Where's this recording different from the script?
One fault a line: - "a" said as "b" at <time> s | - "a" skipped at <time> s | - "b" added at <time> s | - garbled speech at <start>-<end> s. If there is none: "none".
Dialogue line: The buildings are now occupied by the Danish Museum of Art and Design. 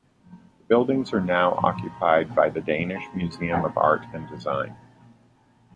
none